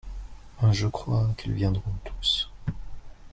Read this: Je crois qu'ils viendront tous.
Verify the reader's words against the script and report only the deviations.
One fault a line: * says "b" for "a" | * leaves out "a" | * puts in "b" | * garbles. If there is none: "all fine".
all fine